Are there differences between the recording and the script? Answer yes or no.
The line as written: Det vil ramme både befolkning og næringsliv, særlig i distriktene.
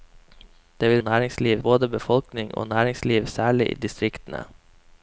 yes